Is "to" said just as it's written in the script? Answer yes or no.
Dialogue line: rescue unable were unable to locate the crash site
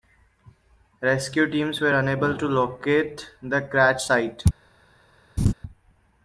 yes